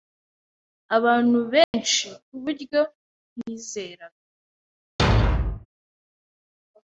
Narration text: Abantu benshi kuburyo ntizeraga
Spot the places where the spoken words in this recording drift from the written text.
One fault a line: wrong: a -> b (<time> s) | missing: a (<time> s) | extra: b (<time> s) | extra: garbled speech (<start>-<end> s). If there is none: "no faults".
no faults